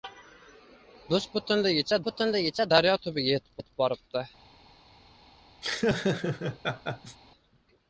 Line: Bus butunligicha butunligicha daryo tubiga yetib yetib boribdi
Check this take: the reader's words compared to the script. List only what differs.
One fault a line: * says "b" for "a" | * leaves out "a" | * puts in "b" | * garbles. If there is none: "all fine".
all fine